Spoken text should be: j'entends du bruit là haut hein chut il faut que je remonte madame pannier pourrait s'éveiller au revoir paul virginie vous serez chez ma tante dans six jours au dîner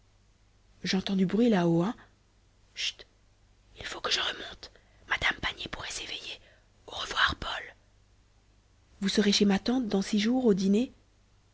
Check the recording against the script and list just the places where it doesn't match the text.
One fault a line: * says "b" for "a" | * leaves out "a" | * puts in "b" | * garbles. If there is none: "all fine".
* leaves out "virginie"